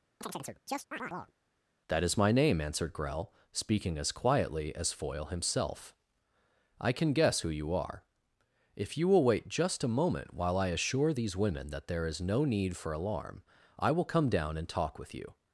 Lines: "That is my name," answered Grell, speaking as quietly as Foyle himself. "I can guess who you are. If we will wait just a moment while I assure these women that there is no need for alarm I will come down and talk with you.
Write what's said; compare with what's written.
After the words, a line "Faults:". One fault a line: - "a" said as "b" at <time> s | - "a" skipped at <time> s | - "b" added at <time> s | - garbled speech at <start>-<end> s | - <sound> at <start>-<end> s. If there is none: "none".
"That is my name," answered Grell, speaking as quietly as Foyle himself. "I can guess who you are. If you will wait just a moment while I assure these women that there is no need for alarm I will come down and talk with you.
Faults:
- chirp at 0.2-1.3 s
- "we" said as "you" at 9.0 s